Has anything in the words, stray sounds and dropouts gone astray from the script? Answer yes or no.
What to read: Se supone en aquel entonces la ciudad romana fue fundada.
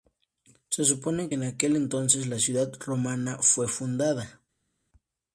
no